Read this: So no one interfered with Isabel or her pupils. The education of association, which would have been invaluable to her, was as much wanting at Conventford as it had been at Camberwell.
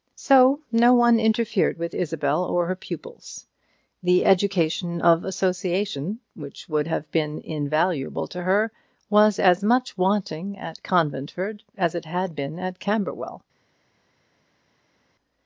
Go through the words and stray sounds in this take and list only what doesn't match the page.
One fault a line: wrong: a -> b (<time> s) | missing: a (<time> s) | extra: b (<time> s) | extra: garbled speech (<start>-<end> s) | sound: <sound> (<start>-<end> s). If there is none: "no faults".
no faults